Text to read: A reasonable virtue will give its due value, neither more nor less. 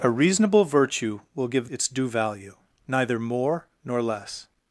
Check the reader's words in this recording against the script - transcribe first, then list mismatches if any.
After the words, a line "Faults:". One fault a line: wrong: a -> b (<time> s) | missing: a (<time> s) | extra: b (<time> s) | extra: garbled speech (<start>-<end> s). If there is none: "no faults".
A reasonable virtue will give its due value, neither more nor less.
Faults:
no faults